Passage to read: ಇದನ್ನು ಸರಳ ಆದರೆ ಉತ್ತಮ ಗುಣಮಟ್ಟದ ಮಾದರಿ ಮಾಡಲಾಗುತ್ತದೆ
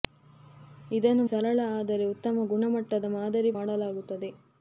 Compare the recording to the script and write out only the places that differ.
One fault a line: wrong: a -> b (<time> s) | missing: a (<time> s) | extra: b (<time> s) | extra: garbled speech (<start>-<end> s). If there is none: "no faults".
no faults